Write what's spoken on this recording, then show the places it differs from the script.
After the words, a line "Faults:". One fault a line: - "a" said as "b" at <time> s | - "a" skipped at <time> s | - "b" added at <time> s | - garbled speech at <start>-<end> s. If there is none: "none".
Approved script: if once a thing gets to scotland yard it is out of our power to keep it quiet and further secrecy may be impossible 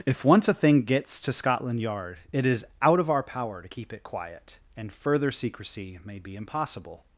if once a thing gets to scotland yard it is out of our power to keep it quiet and further secrecy may be impossible
Faults:
none